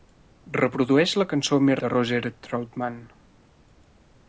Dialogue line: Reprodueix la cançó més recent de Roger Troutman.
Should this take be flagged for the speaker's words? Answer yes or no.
yes